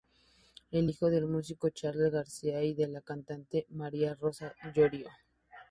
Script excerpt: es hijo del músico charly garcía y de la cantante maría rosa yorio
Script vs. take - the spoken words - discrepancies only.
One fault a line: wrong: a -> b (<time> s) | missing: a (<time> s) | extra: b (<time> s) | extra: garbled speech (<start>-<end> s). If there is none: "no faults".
no faults